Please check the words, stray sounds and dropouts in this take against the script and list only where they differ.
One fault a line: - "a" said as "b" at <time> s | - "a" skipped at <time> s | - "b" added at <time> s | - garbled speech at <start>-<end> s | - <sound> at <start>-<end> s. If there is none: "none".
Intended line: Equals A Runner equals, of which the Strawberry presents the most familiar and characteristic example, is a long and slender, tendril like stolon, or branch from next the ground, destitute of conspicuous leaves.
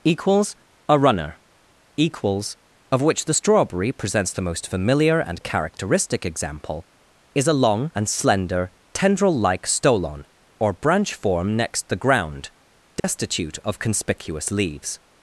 - "from" said as "form" at 11.1 s
- dropout at 13.0-13.0 s